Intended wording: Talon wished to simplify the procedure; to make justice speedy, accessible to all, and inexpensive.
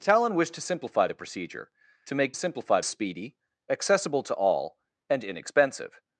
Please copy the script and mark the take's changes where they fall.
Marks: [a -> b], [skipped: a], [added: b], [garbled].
Talon wished to simplify the procedure; to make [justice -> simplify] speedy, accessible to all, and inexpensive.